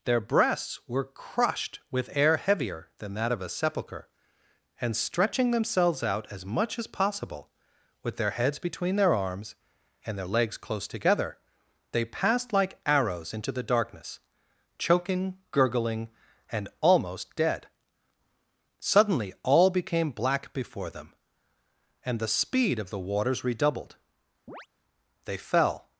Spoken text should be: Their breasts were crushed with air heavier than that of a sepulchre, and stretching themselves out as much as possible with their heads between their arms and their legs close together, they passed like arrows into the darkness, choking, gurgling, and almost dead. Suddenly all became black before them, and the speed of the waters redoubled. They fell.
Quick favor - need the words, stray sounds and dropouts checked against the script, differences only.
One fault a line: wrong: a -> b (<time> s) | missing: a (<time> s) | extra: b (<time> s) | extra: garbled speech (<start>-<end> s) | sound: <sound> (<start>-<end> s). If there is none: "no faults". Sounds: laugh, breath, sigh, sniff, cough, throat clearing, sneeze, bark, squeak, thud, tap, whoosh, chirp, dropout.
sound: chirp (24.5-24.7 s)